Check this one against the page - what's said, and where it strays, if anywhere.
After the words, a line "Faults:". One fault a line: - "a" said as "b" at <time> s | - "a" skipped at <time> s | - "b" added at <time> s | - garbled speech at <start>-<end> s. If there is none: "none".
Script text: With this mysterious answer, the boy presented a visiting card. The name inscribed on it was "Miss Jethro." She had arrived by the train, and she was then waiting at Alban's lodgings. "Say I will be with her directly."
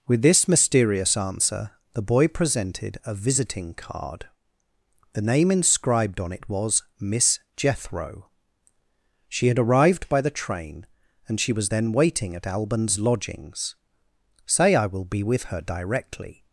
With this mysterious answer, the boy presented a visiting card. The name inscribed on it was "Miss Jethro." She had arrived by the train, and she was then waiting at Alban's lodgings. "Say I will be with her directly."
Faults:
none